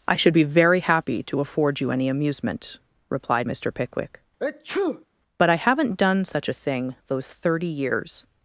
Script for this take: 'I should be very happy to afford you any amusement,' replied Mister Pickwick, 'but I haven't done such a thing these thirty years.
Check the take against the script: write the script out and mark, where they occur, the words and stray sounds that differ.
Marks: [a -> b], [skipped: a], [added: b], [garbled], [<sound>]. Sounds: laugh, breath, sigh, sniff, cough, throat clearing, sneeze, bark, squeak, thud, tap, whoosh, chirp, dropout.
'I should be very happy to afford you any amusement,' replied Mister Pickwick, [sneeze] 'but I haven't done such a thing [these -> those] thirty years.